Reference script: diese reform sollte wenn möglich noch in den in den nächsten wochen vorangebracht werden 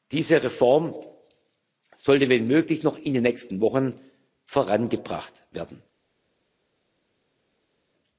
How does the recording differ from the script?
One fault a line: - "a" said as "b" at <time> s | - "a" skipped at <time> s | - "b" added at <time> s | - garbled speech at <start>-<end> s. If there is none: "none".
- "in den" skipped at 3.2 s